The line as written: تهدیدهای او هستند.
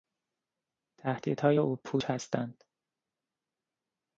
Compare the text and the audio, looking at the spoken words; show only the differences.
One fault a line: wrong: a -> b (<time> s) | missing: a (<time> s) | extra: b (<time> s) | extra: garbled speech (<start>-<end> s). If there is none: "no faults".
extra: پوچ (1.8 s)